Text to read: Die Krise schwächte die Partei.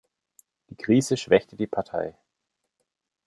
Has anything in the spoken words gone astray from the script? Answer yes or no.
no